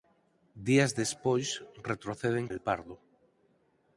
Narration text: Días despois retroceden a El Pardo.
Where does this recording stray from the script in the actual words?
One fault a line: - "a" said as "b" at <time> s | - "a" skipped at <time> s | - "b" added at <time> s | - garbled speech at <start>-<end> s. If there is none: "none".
none